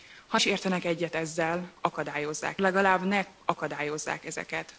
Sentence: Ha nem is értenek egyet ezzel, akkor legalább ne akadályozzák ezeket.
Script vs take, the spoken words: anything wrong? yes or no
yes